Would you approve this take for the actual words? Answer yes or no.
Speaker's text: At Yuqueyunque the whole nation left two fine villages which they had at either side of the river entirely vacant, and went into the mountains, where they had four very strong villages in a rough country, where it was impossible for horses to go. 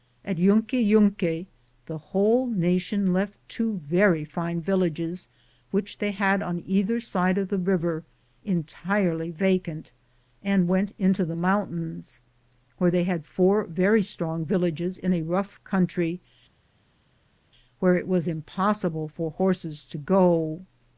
no